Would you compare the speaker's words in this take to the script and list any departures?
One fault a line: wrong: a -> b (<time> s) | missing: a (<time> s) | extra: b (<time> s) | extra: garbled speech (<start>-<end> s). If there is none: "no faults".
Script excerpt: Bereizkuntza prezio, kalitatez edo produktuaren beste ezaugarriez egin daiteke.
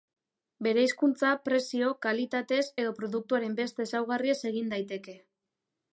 no faults